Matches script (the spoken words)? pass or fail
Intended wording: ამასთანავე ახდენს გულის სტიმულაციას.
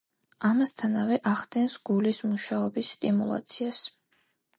fail